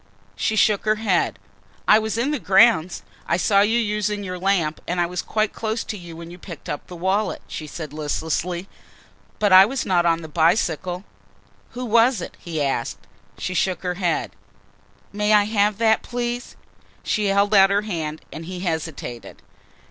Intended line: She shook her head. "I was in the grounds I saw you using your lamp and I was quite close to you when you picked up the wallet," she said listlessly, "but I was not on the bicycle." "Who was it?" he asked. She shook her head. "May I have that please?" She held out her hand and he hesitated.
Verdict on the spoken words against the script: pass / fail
pass